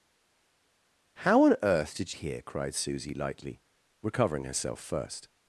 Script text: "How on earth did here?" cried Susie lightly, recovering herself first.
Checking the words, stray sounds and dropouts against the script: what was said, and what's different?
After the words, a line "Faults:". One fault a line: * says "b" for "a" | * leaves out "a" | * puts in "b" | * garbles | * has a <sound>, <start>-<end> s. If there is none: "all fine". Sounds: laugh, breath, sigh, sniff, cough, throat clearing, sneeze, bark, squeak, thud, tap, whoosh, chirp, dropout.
"How on earth did here?" cried Susie lightly, recovering herself first.
Faults:
all fine